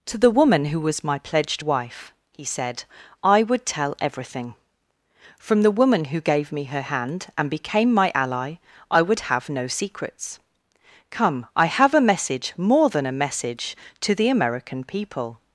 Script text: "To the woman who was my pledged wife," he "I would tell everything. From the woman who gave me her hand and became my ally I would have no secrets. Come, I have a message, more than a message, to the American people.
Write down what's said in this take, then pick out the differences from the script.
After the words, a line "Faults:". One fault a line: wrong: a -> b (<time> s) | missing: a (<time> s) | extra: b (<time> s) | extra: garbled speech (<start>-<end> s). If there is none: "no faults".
"To the woman who was my pledged wife," he said, "I would tell everything. From the woman who gave me her hand and became my ally I would have no secrets. Come, I have a message, more than a message, to the American people.
Faults:
extra: said (2.4 s)